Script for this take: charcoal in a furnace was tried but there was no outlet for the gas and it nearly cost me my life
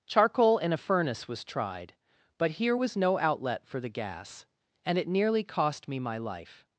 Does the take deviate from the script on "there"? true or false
true